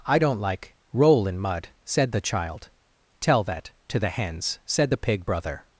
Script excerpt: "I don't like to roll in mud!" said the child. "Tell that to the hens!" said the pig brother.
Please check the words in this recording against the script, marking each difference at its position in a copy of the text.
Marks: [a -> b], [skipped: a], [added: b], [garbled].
"I don't like [skipped: to] roll in mud!" said the child. "Tell that to the hens!" said the pig brother.